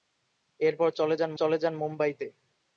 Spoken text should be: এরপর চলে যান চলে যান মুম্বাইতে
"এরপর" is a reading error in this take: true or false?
false